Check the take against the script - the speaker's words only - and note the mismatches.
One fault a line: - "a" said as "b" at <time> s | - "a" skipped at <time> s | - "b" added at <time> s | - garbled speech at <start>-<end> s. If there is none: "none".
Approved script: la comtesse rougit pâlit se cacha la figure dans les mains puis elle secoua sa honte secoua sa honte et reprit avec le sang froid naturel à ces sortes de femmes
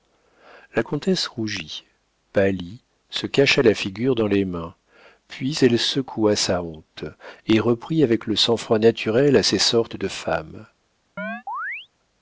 - "secoua sa honte" skipped at 7.0 s